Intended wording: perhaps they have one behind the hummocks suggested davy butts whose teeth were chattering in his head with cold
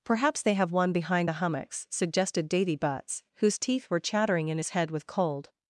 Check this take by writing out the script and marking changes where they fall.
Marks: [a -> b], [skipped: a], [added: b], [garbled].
perhaps they have one behind the hummocks suggested davy butts whose teeth were chattering in his head with cold